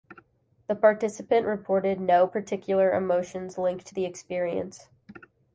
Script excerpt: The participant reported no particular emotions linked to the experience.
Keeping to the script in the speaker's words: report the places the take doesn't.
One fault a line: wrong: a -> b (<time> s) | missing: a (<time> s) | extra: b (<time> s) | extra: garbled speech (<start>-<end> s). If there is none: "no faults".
no faults